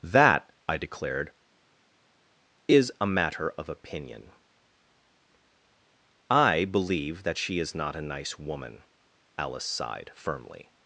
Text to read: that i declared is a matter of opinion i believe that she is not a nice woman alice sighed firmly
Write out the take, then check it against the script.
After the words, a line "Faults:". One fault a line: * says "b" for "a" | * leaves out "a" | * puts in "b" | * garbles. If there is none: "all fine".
that i declared is a matter of opinion i believe that she is not a nice woman alice sighed firmly
Faults:
all fine